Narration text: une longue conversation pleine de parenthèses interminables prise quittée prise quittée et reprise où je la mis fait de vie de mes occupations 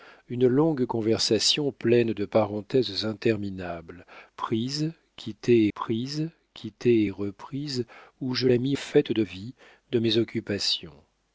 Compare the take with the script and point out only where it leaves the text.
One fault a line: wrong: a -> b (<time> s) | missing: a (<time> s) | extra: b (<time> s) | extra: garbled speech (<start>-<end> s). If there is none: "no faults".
no faults